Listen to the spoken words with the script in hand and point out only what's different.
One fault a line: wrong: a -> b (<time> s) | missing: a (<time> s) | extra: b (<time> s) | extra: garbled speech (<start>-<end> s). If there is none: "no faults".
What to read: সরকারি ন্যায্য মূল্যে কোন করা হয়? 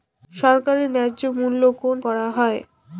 no faults